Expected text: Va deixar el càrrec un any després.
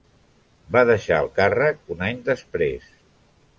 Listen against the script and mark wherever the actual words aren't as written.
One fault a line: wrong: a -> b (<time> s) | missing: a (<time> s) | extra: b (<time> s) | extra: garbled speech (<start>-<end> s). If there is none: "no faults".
no faults